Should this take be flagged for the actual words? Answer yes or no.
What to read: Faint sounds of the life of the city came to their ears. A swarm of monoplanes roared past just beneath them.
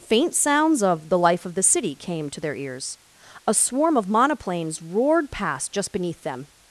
no